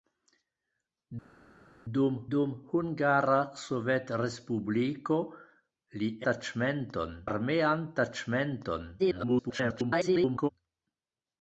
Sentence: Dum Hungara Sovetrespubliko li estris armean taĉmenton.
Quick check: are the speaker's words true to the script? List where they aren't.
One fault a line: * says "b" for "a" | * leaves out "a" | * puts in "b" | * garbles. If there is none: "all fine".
* puts in "dum"
* says "taĉmenton" for "estris"
* garbles